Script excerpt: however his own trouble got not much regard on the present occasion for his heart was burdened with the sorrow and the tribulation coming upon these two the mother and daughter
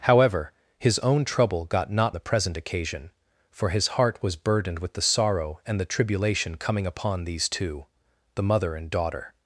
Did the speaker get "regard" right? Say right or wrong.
wrong